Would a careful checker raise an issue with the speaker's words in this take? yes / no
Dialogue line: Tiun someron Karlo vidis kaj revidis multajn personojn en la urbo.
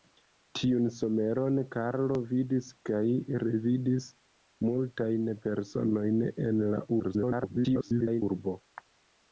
yes